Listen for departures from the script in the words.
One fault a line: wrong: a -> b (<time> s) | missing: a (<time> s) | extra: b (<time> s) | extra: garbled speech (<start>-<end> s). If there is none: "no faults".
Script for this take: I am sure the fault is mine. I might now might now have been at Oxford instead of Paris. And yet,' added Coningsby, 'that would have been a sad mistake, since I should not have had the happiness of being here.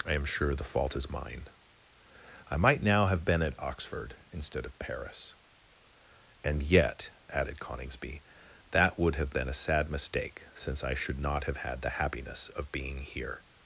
missing: might now (3.0 s)